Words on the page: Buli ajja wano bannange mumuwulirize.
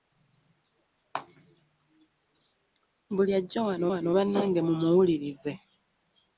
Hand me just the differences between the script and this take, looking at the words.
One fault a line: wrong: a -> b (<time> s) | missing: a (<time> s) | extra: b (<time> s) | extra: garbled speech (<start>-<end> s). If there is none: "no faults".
extra: wano (3.9 s)